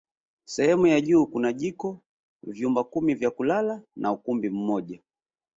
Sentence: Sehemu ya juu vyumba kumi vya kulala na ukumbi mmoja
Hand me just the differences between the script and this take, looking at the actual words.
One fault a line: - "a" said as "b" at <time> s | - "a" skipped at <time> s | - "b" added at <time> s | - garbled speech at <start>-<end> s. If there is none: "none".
- "kuna jiko" added at 1.3 s